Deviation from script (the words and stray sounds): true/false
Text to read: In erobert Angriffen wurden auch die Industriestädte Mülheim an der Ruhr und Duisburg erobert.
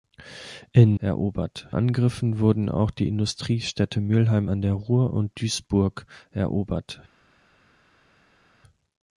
false